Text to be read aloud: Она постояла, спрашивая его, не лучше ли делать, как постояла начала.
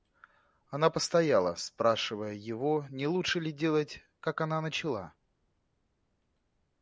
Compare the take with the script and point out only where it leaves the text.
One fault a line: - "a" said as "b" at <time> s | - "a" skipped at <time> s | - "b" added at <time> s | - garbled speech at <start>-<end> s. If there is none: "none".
- "постояла" said as "она" at 4.4 s